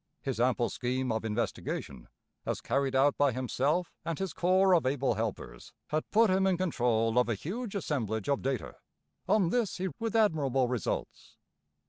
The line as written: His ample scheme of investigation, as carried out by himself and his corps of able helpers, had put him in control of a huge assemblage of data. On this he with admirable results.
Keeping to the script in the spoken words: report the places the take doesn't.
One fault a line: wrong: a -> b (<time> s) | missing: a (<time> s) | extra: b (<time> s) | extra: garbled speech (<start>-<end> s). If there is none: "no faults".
no faults